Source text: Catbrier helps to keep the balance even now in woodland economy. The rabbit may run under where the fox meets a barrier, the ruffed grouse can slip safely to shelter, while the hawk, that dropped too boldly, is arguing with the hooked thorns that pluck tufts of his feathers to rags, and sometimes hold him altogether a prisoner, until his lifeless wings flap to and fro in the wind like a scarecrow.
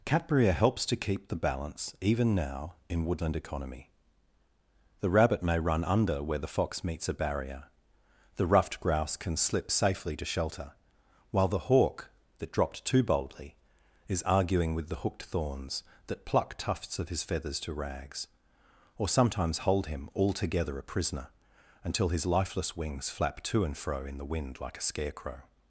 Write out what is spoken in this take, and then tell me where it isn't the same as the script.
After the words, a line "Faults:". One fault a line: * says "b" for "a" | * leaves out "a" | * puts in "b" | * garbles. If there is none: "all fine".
Catbrier helps to keep the balance even now in woodland economy. The rabbit may run under where the fox meets a barrier, the ruffed grouse can slip safely to shelter, while the hawk, that dropped too boldly, is arguing with the hooked thorns that pluck tufts of his feathers to rags, or sometimes hold him altogether a prisoner, until his lifeless wings flap to and fro in the wind like a scarecrow.
Faults:
* says "or" for "and"